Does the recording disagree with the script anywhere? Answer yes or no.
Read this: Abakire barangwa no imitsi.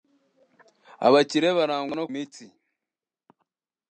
no